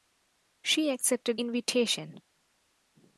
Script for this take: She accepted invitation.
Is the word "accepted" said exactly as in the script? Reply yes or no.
yes